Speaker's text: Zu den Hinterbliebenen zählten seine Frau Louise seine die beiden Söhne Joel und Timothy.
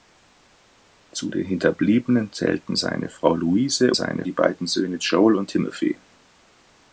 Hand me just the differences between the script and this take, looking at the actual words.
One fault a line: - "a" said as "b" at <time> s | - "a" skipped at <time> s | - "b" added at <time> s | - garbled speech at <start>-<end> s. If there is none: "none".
none